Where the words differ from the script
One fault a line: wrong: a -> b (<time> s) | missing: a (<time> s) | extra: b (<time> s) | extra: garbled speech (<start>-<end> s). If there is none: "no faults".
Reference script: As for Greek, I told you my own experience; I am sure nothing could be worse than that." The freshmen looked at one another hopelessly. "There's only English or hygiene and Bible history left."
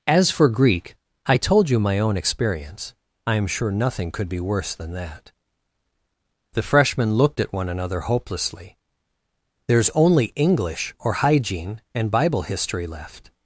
no faults